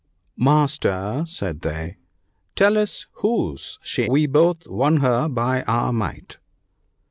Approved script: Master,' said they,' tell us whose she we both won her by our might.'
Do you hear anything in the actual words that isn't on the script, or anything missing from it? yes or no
no